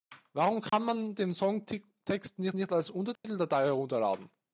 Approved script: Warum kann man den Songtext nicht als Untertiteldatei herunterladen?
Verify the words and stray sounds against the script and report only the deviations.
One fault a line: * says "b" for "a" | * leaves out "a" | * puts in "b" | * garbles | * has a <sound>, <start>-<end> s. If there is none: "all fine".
* has a dropout, 0.7-0.7 s
* puts in "nicht"
* has a dropout, 3.2-3.2 s